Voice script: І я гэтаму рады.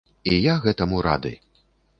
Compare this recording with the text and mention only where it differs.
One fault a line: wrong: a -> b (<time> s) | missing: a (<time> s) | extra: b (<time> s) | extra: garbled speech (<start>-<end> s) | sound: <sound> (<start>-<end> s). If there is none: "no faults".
no faults